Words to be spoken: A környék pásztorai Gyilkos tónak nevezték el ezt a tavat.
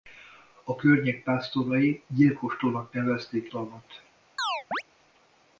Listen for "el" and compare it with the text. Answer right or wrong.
wrong